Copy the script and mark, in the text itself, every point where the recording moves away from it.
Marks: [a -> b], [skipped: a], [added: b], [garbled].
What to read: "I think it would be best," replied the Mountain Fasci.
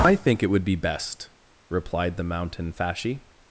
"I think it would be best," replied the Mountain Fasci.